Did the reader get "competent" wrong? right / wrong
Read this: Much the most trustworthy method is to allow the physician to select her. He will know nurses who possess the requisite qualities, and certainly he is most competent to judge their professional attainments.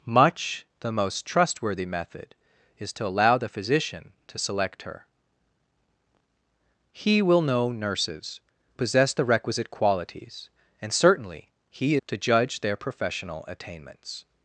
wrong